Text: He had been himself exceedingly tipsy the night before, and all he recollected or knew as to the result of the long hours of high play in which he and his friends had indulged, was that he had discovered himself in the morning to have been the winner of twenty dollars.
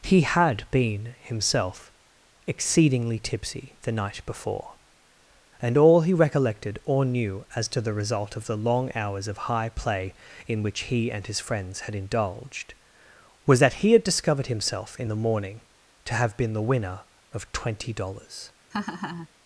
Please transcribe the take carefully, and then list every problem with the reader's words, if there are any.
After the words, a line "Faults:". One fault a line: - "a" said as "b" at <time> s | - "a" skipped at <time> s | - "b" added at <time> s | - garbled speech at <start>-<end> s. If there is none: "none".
He had been himself exceedingly tipsy the night before, and all he recollected or knew as to the result of the long hours of high play in which he and his friends had indulged, was that he had discovered himself in the morning to have been the winner of twenty dollars.
Faults:
none